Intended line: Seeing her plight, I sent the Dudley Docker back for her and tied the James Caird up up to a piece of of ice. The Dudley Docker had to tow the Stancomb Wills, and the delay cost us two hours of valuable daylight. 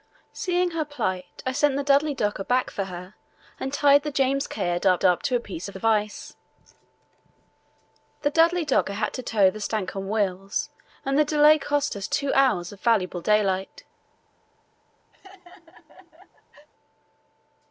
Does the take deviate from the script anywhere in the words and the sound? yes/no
yes